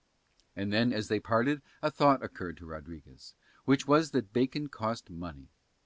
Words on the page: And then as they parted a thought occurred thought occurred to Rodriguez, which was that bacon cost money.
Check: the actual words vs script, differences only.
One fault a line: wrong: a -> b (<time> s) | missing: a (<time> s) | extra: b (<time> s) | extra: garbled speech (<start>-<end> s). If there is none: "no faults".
missing: thought occurred (2.6 s)